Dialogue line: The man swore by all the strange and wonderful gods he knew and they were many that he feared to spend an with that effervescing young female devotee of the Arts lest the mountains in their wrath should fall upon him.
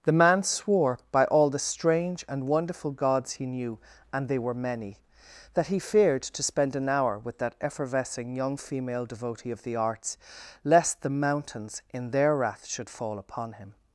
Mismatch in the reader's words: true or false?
true